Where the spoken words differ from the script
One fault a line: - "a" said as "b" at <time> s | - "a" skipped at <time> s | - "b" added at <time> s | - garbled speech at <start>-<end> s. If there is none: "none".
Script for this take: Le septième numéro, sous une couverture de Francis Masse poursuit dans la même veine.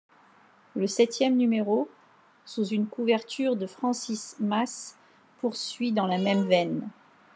none